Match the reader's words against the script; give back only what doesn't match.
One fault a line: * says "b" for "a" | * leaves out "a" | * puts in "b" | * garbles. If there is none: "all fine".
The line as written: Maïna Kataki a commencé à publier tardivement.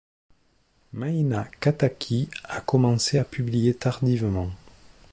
all fine